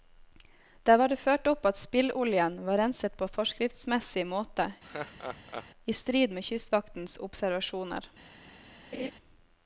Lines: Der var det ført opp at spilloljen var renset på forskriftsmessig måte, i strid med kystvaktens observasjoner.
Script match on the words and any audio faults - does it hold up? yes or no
no